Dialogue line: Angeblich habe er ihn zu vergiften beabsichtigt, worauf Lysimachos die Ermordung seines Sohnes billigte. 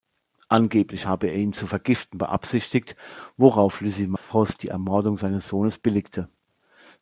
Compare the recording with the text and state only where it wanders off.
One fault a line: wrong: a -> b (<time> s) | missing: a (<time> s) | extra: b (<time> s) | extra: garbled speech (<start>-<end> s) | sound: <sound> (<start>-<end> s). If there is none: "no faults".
sound: dropout (4.2-4.3 s)